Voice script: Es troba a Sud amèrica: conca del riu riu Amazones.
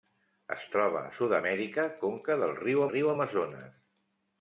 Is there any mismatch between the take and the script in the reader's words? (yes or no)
no